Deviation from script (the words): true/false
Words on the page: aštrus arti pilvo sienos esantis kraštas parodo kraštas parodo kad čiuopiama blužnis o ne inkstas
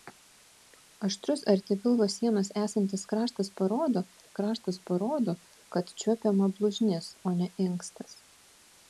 false